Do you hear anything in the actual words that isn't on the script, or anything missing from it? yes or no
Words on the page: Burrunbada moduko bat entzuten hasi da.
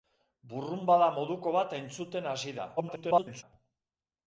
yes